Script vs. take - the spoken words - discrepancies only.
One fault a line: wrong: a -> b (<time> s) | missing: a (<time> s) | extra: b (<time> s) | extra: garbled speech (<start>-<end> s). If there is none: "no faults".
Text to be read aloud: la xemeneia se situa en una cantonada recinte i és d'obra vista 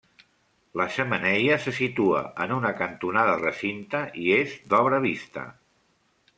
no faults